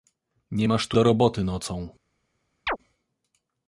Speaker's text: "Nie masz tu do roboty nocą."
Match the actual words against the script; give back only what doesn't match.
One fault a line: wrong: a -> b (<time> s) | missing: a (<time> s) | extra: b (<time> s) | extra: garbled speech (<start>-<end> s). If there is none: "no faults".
no faults